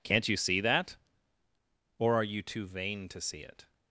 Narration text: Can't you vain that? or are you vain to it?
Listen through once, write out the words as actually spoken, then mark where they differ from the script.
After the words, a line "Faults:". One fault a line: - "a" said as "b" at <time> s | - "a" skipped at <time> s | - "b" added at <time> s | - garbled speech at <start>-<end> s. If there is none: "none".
Can't you see that? or are you too vain to see it?
Faults:
- "vain" said as "see" at 0.4 s
- "too" added at 2.4 s
- "see" added at 3.2 s